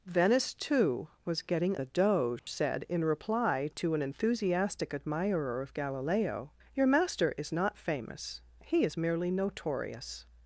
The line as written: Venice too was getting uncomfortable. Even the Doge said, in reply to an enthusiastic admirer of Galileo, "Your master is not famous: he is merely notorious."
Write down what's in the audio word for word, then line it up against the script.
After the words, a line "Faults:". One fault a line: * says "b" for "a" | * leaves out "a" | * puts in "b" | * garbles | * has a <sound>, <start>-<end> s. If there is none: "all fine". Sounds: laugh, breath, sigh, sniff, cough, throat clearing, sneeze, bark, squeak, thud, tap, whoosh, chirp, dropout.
Venice too was getting the Doge said, in reply to an enthusiastic admirer of Galileo, "Your master is not famous: he is merely notorious."
Faults:
* leaves out "uncomfortable Even"
* has a dropout, 2.4-2.5 s